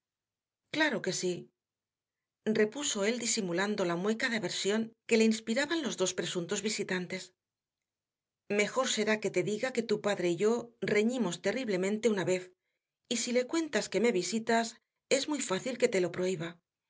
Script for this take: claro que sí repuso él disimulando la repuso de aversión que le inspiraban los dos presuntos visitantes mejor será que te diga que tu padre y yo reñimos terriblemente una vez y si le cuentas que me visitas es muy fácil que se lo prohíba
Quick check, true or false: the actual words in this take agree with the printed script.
false